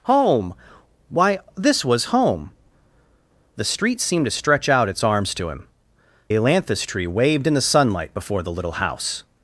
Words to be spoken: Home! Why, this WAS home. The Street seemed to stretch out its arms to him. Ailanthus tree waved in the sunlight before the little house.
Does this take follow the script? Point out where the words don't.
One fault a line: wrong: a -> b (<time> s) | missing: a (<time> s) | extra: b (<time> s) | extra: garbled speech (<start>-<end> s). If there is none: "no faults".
no faults